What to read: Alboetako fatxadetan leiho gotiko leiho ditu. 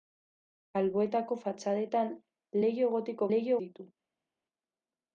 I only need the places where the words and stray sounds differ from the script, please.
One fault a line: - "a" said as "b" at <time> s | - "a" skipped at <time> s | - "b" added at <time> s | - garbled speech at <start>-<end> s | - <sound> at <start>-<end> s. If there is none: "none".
none